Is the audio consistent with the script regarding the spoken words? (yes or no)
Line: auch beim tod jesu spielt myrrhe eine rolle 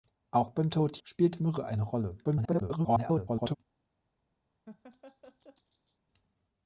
no